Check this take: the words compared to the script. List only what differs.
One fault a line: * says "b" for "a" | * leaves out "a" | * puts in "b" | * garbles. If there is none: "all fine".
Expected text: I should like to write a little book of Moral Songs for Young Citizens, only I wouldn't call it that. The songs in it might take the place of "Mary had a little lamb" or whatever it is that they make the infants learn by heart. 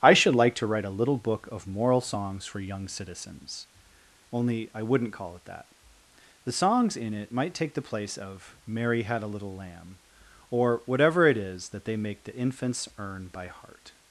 * says "earn" for "learn"